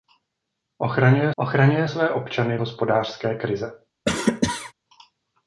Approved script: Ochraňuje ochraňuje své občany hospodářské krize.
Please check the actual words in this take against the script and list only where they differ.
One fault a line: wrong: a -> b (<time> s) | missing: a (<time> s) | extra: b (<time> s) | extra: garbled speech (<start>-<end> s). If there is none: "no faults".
no faults